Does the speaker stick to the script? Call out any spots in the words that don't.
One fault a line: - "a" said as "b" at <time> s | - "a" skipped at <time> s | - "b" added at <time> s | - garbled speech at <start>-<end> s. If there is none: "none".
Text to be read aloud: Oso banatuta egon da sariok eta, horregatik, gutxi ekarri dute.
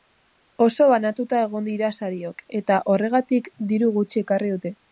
- "da" said as "dira" at 1.7 s
- "diru" added at 3.7 s